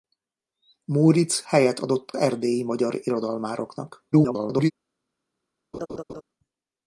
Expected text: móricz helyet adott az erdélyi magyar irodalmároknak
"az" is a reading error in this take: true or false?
true